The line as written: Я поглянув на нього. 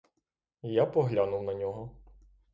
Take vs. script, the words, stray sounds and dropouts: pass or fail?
pass